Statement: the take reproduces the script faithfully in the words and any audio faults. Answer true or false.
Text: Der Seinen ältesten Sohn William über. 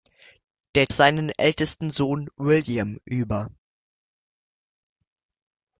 true